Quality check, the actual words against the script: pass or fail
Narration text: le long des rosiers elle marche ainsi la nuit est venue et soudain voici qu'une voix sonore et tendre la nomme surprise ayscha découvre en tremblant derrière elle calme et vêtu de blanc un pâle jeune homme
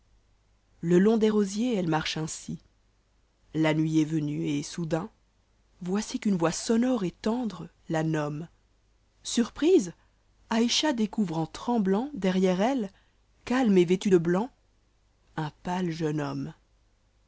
pass